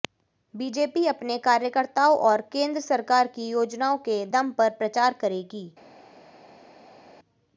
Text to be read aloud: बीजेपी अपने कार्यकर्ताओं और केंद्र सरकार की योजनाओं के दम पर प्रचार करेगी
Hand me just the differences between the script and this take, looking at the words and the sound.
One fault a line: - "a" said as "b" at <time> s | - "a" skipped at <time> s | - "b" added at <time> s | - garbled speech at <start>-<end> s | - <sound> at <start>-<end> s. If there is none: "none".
none